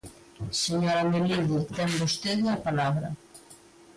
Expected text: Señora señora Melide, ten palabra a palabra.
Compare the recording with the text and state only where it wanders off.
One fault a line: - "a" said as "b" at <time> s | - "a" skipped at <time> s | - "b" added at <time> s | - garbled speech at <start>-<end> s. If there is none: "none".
- "señora" skipped at 1.0 s
- "palabra" said as "vostede" at 2.0 s